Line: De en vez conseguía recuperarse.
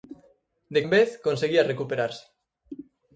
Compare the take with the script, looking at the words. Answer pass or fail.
pass